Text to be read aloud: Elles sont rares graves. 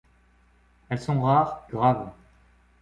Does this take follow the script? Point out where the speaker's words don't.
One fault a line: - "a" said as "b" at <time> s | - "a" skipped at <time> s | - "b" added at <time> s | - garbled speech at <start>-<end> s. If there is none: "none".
none